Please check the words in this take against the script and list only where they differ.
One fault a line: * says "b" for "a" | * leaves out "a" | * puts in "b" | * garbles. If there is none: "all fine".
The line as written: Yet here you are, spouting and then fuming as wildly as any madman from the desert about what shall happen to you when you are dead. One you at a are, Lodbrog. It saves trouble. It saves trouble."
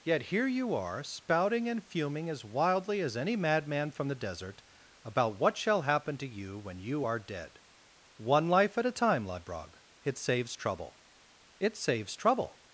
* leaves out "then"
* says "life" for "you"
* says "time" for "are"